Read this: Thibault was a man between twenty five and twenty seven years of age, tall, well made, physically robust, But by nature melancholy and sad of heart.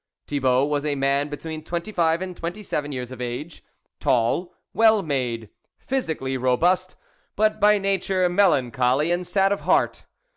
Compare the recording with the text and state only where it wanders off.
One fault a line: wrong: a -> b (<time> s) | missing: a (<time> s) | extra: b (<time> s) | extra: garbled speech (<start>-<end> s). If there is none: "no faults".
no faults